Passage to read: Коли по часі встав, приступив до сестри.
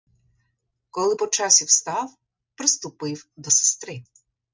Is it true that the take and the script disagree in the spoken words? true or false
false